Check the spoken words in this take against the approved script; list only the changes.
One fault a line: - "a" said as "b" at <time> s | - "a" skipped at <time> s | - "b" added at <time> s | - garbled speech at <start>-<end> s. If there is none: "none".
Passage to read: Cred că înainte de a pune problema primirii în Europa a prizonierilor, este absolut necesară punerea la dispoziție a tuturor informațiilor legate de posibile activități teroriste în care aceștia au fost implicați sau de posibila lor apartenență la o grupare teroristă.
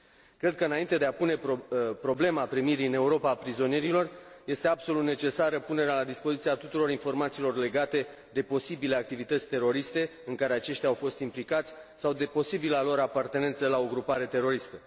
none